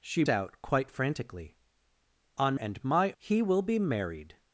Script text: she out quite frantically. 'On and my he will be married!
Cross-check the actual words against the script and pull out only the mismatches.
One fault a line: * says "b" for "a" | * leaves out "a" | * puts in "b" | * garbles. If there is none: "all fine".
all fine